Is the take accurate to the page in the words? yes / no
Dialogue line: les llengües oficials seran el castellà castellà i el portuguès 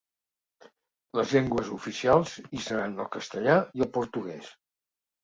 no